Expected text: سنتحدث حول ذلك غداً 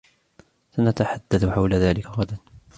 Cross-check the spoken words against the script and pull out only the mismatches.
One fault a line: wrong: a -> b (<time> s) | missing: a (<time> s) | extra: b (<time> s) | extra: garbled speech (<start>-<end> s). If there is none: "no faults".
no faults